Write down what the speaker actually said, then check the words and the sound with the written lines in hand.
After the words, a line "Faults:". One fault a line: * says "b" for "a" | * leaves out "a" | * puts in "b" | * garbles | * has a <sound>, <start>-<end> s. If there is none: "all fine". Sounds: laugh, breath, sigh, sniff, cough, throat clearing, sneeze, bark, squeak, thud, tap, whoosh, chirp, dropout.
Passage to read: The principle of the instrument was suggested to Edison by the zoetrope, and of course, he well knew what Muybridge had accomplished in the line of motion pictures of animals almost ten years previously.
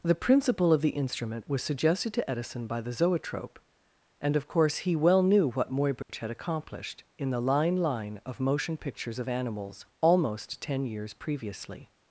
The principle of the instrument was suggested to Edison by the zoetrope, and of course, he well knew what Muybridge had accomplished in the line line of motion pictures of animals almost ten years previously.
Faults:
* has a dropout, 6.0-6.1 s
* puts in "line"